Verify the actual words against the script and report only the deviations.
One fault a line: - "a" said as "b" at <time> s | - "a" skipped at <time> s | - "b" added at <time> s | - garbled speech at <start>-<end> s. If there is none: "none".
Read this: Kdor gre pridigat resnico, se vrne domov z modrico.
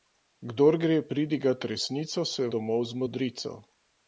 - "vrne" skipped at 2.5 s